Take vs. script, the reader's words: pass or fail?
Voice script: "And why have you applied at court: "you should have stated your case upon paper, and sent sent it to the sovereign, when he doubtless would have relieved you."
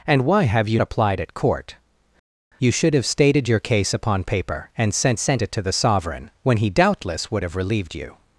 pass